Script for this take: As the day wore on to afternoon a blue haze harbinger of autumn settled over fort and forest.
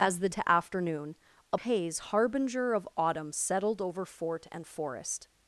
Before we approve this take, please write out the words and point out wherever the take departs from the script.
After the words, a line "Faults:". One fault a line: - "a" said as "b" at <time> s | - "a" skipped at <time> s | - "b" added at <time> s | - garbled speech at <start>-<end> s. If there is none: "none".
As the to afternoon a haze harbinger of autumn settled over fort and forest.
Faults:
- "day wore on" skipped at 0.3 s
- "blue" skipped at 1.6 s